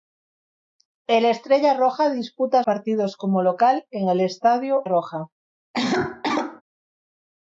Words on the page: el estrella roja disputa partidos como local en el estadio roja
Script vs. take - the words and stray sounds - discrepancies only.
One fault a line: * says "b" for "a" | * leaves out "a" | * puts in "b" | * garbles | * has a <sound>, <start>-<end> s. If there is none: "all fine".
* has a cough, 5.7-6.6 s